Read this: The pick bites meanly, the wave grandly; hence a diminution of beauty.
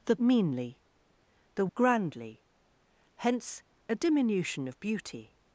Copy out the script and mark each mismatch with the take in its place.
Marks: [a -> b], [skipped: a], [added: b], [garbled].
The [skipped: pick bites] meanly, the [skipped: wave] grandly; hence a diminution of beauty.